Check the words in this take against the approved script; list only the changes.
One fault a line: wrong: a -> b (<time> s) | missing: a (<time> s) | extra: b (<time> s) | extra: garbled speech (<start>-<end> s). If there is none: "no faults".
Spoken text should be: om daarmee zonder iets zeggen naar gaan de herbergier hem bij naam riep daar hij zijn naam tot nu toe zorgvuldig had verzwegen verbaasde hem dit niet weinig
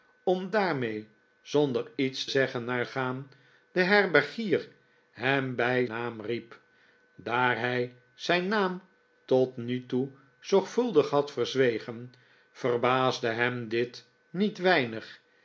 no faults